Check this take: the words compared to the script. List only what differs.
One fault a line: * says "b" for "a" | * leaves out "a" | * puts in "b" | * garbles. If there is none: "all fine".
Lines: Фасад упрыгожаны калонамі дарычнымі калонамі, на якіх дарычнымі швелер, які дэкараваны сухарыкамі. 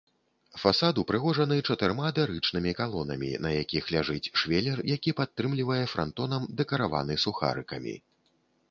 * says "чатырма" for "калонамі"
* says "ляжыць" for "дарычнымі"
* puts in "падтрымлівае франтонам"